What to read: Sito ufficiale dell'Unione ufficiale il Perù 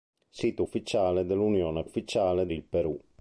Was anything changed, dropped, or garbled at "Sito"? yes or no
no